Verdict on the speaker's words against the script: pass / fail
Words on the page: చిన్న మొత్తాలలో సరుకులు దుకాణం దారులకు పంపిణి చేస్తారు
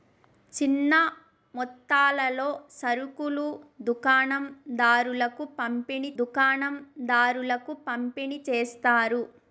fail